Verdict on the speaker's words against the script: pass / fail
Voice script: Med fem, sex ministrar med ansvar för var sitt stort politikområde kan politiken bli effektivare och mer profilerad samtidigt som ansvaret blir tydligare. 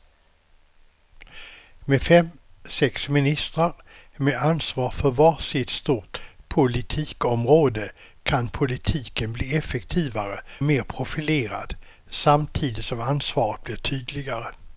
fail